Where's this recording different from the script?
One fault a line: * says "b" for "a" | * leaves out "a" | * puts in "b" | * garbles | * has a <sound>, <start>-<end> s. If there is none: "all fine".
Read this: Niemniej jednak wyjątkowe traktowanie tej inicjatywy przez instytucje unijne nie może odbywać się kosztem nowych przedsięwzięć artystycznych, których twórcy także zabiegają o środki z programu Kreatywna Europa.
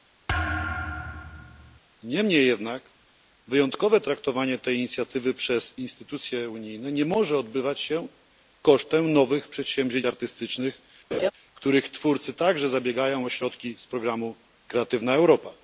* has a thud, 0.3-1.8 s
* has a laugh, 11.1-11.3 s